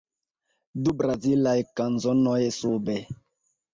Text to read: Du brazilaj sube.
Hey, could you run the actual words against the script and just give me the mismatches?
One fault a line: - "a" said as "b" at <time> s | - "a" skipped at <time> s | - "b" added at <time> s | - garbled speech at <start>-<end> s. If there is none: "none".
- "kanzonoj" added at 1.8 s